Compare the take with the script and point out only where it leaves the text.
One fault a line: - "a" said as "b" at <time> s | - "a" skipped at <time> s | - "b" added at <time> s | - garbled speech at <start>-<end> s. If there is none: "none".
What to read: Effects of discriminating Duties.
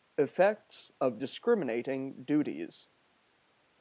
none